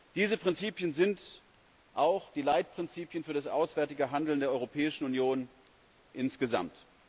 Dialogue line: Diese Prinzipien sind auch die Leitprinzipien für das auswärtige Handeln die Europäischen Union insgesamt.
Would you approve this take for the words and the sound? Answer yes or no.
no